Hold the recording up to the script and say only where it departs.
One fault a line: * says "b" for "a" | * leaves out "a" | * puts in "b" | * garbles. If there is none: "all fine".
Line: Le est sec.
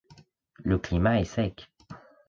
* puts in "climat"